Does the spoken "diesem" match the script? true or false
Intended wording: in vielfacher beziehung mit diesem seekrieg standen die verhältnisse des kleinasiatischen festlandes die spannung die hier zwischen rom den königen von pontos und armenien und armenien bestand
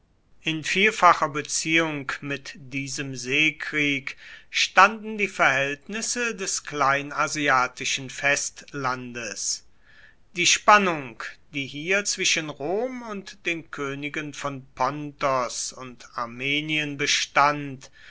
true